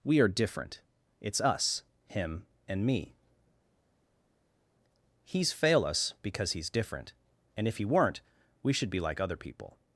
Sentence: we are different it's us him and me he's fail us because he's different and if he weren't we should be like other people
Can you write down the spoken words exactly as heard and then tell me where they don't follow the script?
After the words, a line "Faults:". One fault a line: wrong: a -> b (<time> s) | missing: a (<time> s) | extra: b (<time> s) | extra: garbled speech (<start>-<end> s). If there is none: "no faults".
we are different it's us him and me he's fail us because he's different and if he weren't we should be like other people
Faults:
no faults